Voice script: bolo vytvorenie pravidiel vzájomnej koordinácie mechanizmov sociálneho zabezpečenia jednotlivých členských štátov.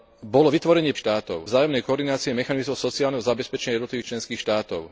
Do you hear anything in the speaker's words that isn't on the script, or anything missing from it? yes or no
yes